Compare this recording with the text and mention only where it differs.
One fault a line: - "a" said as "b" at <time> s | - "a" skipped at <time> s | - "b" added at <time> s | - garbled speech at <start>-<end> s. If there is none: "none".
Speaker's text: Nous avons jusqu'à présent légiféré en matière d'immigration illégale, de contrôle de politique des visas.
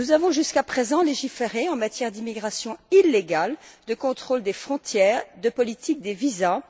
- "des frontières" added at 4.4 s